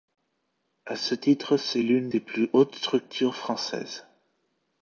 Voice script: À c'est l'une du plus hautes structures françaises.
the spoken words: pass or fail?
fail